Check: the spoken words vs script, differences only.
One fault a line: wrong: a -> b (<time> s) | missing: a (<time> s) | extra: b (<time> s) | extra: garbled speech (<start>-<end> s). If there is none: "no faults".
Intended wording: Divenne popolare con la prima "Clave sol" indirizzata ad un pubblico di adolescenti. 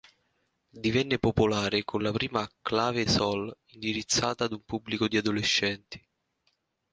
no faults